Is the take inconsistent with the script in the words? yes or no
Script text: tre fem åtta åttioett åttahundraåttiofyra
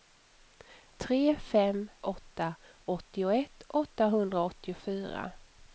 no